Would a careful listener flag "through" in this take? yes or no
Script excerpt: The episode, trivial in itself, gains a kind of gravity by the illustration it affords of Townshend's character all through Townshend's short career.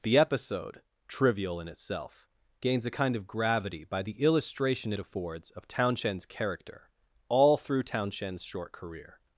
no